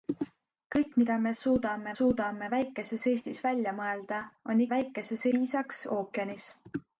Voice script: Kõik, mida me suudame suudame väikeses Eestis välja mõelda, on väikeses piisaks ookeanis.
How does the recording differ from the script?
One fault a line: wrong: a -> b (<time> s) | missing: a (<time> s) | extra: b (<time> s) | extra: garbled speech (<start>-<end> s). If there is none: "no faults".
no faults